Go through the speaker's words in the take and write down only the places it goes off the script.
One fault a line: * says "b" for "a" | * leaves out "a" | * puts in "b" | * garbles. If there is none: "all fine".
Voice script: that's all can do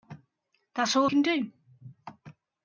all fine